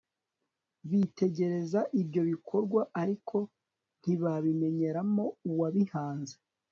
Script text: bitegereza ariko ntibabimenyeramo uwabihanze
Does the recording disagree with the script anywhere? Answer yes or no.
yes